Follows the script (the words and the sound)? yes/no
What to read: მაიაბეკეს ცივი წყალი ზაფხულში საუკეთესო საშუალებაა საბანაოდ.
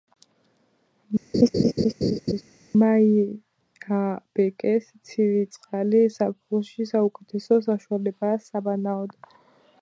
no